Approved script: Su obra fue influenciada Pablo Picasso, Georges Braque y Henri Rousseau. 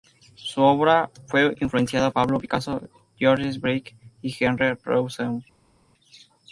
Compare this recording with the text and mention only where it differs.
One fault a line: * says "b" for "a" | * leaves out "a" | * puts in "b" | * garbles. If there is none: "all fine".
all fine